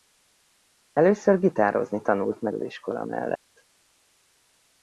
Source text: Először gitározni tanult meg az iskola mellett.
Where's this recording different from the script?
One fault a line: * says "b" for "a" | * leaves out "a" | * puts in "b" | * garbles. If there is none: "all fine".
all fine